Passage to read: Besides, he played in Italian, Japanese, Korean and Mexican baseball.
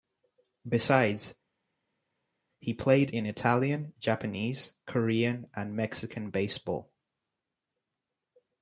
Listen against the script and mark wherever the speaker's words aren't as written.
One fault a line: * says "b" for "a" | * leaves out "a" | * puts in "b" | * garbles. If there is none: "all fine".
all fine